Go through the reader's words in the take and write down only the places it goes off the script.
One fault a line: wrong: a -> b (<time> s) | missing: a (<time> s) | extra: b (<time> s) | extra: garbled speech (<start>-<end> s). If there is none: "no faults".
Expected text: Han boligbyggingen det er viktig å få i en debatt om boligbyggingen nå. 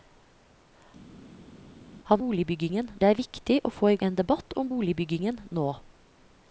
no faults